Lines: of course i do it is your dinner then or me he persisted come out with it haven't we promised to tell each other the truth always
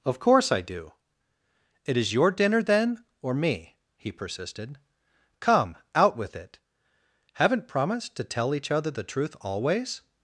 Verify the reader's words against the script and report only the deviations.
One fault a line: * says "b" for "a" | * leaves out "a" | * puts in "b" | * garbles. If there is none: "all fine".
* leaves out "we"